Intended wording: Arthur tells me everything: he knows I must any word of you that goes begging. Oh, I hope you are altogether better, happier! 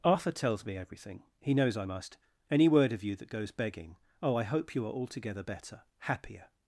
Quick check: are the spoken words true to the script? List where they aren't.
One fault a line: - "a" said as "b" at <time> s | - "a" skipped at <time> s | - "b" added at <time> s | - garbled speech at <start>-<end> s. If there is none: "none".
none